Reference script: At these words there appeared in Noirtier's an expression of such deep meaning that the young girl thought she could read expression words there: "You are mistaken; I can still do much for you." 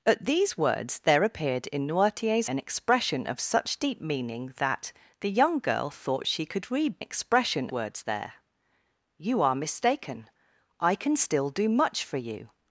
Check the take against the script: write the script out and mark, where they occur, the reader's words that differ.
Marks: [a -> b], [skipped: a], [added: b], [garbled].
At these words there appeared in Noirtier's an expression of such deep meaning that the young girl thought she could read expression words there: "You are mistaken; I can still do much for you."